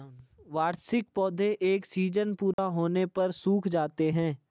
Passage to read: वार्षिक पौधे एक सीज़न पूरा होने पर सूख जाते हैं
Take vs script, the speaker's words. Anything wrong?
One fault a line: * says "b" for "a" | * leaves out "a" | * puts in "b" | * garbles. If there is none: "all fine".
all fine